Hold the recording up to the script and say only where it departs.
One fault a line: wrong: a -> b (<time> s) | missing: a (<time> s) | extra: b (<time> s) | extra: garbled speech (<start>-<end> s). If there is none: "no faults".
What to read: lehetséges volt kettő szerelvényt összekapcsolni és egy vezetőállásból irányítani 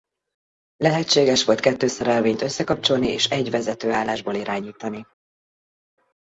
no faults